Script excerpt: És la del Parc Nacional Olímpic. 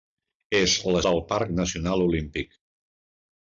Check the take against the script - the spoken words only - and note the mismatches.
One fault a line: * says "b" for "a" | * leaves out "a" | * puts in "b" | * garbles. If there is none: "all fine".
all fine